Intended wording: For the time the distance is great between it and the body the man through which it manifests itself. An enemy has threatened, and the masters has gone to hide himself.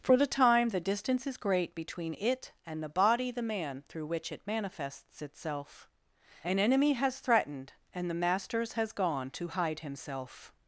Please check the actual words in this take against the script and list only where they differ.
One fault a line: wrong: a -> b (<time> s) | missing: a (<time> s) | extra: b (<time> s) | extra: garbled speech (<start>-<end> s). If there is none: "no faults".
no faults